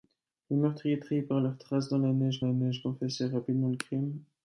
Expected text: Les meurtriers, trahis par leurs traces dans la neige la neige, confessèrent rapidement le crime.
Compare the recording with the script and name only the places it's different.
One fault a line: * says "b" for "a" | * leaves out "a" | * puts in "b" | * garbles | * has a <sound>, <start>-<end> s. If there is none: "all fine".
all fine